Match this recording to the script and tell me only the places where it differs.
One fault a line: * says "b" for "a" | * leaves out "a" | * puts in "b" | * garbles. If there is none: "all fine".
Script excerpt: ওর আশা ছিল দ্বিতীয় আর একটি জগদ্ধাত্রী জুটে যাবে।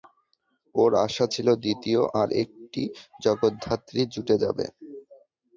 all fine